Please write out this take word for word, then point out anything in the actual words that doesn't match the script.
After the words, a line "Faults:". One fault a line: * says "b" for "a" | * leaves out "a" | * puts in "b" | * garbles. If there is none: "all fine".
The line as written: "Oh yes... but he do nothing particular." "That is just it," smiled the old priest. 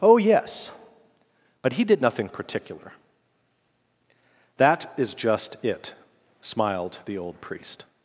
"Oh yes... but he did nothing particular." "That is just it," smiled the old priest.
Faults:
* says "did" for "do"